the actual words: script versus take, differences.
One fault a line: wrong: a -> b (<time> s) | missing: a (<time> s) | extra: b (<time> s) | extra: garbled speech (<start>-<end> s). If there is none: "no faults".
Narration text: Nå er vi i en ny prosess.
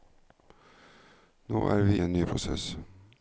no faults